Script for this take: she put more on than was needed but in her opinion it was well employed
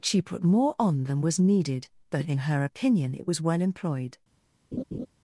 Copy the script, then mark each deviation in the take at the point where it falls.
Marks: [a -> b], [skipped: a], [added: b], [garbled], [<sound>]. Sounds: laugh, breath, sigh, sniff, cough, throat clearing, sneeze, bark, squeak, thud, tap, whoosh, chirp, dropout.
she put more on than was needed but in her opinion it was well employed [laugh]